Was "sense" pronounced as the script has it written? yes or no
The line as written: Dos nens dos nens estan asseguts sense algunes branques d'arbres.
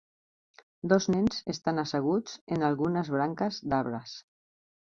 no